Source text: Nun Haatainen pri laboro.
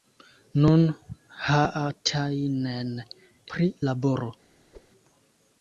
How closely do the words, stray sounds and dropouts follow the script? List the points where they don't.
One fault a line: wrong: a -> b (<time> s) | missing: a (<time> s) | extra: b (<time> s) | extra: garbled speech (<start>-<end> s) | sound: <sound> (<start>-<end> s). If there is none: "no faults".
sound: whoosh (4.7-4.9 s)